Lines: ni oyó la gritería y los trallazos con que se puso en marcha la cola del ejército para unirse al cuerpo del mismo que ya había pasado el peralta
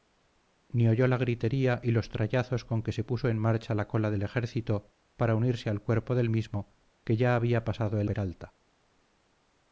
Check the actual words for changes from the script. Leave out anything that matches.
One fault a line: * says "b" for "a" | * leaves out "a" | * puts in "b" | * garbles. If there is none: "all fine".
all fine